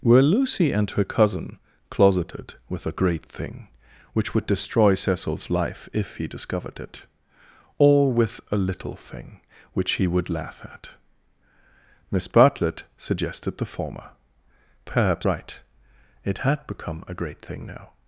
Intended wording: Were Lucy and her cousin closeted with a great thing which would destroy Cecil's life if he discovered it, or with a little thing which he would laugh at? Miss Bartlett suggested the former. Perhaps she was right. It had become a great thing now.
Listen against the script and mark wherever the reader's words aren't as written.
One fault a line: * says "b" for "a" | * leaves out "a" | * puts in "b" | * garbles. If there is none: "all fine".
* leaves out "she was"